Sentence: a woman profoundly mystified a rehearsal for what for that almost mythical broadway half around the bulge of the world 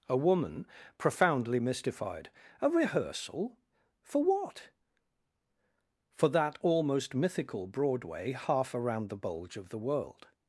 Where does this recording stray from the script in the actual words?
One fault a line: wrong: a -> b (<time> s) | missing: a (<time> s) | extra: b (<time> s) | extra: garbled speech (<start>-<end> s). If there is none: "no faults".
no faults